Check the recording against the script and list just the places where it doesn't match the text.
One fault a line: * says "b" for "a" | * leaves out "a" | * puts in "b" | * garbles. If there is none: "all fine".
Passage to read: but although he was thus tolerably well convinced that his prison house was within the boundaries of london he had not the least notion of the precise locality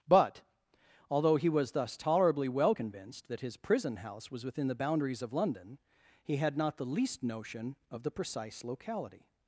all fine